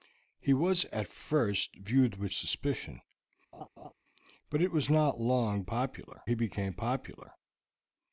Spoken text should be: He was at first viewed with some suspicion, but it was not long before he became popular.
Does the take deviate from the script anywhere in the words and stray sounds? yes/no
yes